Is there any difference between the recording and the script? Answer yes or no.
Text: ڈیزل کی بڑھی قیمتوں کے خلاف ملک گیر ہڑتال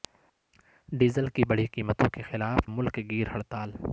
no